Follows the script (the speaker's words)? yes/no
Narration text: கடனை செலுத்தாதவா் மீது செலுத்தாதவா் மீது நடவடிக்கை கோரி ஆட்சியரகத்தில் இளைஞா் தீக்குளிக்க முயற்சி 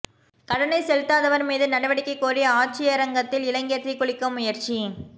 no